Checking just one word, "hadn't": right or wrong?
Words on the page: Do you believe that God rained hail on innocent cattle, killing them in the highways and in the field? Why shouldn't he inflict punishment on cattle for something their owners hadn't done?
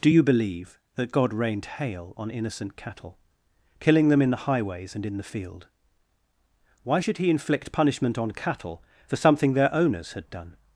wrong